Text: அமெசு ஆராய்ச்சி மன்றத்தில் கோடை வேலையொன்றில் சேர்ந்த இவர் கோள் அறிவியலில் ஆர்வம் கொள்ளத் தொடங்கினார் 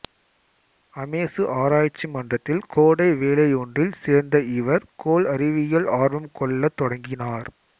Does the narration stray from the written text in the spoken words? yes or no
no